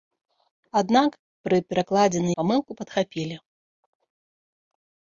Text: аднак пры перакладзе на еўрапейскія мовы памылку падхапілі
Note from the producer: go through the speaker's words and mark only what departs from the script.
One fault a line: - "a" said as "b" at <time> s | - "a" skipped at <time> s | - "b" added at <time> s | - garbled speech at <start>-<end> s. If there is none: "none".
- "еўрапейскія мовы" skipped at 2.3 s